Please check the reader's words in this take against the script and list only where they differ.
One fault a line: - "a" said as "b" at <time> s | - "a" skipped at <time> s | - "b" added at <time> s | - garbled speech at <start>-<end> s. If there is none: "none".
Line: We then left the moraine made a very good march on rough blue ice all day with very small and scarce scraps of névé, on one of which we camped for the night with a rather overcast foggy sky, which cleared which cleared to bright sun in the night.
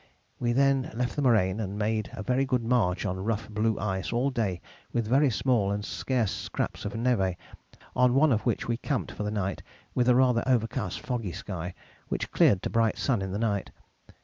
- "and" added at 1.6 s
- "which cleared" skipped at 12.6 s